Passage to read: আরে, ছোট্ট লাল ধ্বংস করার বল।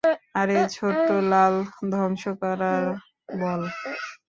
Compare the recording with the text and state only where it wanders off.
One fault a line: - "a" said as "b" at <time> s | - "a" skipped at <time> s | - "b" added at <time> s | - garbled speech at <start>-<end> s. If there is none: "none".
none